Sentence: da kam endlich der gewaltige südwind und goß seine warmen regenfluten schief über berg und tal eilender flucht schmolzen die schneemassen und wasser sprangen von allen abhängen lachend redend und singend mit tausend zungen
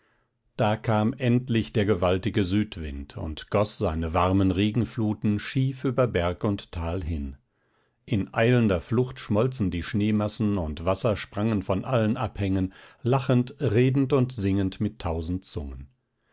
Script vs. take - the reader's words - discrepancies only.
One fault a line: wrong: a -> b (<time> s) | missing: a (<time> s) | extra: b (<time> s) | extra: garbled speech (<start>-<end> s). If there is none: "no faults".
extra: hin in (7.0 s)